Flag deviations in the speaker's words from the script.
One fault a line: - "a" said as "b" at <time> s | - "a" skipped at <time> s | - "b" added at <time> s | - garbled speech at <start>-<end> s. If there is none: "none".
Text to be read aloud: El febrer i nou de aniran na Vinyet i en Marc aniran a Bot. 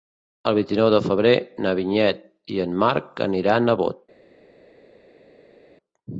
- "febrer" said as "vint" at 0.6 s
- "aniran" said as "febrer" at 1.1 s